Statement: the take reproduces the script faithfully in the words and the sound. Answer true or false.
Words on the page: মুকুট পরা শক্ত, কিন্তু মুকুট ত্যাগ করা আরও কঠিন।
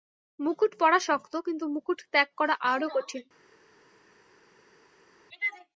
true